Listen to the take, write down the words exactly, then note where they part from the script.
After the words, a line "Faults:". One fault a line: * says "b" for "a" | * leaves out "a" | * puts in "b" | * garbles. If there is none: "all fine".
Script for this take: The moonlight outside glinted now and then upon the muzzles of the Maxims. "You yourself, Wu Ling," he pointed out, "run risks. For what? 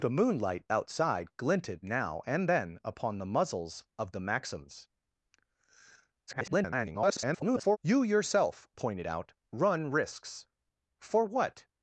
The moonlight outside glinted now and then upon the muzzles of the Maxims. [garbled] "You yourself, Pointed out, "run risks. For what?
Faults:
* garbles
* leaves out "Wu Ling he"